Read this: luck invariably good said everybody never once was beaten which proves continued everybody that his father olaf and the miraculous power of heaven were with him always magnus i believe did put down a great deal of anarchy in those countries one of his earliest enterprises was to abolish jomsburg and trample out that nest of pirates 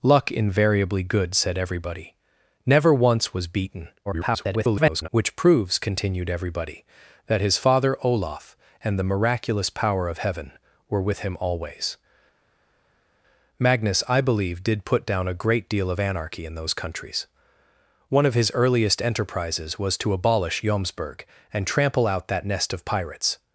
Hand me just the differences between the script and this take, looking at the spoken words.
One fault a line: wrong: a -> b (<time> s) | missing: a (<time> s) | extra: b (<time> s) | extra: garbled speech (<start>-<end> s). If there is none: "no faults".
extra: garbled speech (4.1-5.1 s)